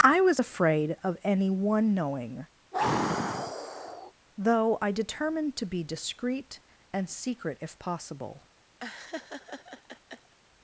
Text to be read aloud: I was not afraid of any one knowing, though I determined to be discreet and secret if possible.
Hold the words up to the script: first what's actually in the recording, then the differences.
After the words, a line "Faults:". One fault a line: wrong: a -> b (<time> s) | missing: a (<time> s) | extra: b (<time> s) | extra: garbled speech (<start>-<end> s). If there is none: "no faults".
I was afraid of any one knowing, though I determined to be discreet and secret if possible.
Faults:
missing: not (0.4 s)